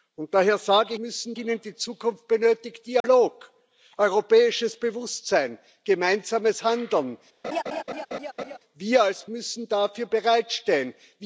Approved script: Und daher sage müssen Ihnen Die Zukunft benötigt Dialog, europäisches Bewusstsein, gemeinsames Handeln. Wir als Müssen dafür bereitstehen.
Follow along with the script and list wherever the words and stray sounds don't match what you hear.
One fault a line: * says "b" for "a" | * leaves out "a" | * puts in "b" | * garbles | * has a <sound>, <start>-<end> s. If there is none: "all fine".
* has a dropout, 3.0-3.0 s
* has a laugh, 7.4-8.6 s